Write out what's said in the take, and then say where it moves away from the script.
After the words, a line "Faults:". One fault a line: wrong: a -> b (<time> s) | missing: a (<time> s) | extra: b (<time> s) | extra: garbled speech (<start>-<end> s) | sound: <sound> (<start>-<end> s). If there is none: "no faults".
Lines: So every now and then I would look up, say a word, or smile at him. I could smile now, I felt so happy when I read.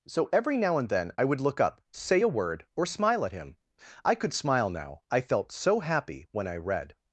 So every now and then I would look up, say a word, or smile at him. I could smile now, I felt so happy when I read.
Faults:
no faults